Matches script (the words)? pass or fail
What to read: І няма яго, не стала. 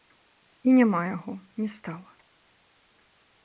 pass